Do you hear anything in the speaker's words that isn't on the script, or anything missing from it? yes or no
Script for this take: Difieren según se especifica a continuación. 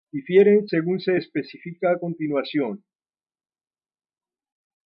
no